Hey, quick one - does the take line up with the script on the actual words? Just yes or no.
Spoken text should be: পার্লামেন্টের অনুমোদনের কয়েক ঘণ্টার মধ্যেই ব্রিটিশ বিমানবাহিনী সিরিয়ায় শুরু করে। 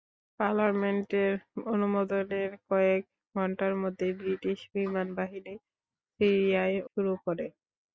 yes